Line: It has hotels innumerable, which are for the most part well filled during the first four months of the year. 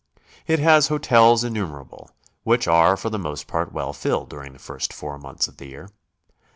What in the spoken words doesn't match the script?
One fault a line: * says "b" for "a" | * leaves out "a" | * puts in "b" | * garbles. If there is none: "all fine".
all fine